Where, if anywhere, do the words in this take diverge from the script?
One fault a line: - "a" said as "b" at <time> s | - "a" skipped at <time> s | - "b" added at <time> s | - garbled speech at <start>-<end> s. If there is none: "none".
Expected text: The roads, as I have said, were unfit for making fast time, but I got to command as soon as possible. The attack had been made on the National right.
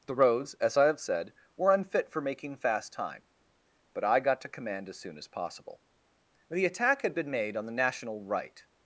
none